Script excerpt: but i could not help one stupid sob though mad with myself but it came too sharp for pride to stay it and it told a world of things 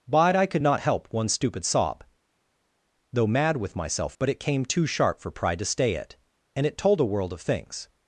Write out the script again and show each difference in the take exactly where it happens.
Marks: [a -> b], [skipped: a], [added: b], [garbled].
but i could not help one stupid sob though mad with myself but it came too sharp for pride to stay it and it told a world of things